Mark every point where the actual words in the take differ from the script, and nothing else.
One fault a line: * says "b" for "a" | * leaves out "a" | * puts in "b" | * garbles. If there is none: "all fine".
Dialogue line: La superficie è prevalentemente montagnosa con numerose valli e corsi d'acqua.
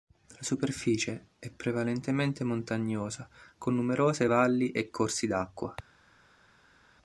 all fine